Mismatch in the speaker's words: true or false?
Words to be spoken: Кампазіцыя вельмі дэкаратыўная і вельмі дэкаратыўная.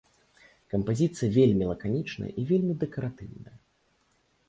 true